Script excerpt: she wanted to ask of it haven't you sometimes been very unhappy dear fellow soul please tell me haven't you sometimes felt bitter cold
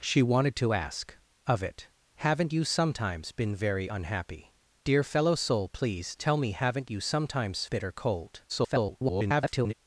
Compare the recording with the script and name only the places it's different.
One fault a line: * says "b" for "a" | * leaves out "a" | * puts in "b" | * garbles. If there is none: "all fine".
* leaves out "felt"
* garbles